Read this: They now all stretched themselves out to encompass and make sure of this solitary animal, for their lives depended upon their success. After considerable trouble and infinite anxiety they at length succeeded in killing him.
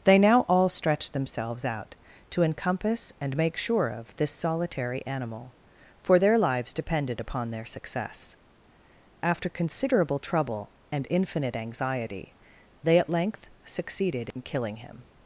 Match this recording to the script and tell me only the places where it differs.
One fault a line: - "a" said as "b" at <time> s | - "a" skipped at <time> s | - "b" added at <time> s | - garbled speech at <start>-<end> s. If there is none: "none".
none